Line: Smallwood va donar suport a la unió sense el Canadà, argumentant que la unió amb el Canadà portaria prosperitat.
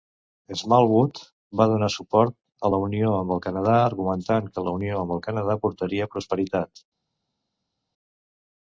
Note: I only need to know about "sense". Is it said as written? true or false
false